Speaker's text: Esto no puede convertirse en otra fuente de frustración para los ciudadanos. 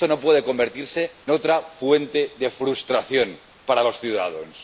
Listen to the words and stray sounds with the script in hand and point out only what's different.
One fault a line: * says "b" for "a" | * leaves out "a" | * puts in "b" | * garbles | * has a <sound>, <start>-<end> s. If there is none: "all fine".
* leaves out "en"